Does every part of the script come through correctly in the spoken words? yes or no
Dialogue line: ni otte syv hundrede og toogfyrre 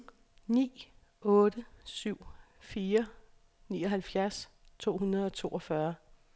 no